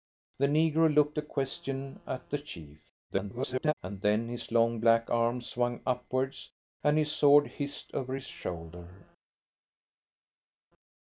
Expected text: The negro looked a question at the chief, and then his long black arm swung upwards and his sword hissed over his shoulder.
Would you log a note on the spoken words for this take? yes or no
yes